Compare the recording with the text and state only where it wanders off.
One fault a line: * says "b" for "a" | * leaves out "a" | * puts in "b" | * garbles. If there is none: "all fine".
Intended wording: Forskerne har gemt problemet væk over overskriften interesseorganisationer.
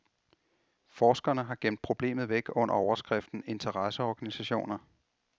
* says "under" for "over"